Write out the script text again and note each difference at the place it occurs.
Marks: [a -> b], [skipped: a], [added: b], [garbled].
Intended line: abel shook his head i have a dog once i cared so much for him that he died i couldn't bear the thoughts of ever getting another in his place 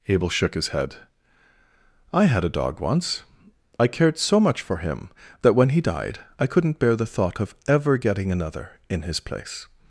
abel shook his head i [have -> had] a dog once i cared so much for him that [added: when] he died i couldn't bear the [thoughts -> thought] of ever getting another in his place